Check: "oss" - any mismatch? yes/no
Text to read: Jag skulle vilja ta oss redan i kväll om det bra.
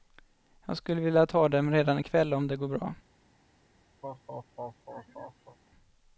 yes